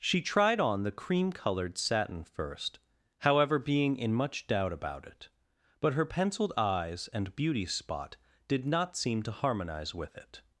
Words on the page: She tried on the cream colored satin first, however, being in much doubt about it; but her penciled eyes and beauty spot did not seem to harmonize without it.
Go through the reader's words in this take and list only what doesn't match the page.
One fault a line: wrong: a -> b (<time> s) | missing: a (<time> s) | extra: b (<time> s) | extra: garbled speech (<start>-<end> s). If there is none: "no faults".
wrong: without -> with (9.9 s)